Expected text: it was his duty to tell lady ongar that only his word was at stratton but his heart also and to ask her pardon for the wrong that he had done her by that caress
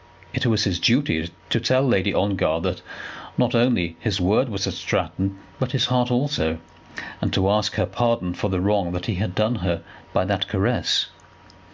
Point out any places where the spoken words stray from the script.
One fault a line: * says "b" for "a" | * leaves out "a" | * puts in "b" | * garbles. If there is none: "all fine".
* puts in "not"